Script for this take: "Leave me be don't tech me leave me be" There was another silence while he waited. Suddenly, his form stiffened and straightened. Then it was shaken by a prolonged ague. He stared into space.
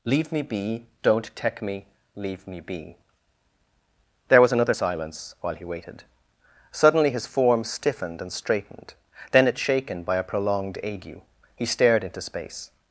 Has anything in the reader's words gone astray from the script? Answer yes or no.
yes